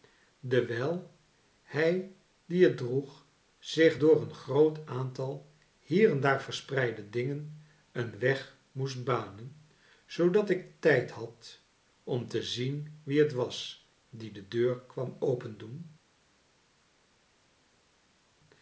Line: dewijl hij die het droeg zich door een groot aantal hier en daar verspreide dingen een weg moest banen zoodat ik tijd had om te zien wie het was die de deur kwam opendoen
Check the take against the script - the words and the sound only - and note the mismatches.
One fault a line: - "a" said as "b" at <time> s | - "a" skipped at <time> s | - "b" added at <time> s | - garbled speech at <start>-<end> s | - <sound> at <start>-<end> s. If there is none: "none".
none